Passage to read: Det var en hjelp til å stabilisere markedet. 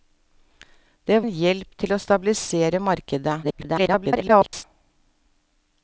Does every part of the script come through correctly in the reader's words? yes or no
no